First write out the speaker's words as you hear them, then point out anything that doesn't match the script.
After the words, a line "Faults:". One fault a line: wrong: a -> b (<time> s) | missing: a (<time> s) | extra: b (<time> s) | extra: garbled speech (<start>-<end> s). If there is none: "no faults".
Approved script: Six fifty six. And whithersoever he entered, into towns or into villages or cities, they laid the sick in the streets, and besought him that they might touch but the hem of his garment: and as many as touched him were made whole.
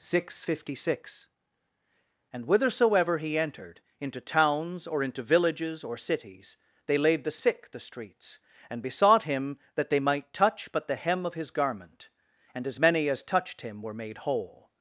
Six fifty six. And whithersoever he entered, into towns or into villages or cities, they laid the sick the streets, and besought him that they might touch but the hem of his garment: and as many as touched him were made whole.
Faults:
missing: in (7.7 s)